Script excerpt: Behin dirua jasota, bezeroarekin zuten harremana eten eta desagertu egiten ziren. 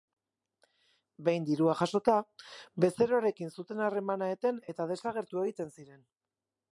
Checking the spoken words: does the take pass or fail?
pass